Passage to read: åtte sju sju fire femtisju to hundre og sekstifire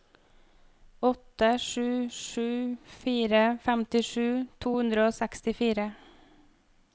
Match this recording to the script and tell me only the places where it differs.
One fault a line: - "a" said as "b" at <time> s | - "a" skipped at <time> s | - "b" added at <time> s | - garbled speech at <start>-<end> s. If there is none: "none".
none